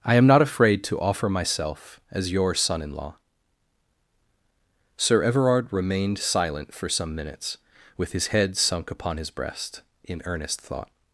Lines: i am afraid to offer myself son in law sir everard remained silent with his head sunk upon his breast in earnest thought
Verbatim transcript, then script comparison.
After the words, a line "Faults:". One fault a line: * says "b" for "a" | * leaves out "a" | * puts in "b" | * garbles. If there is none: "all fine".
i am not afraid to offer myself as your son in law sir everard remained silent for some minutes with his head sunk upon his breast in earnest thought
Faults:
* puts in "not"
* puts in "as your"
* puts in "for some minutes"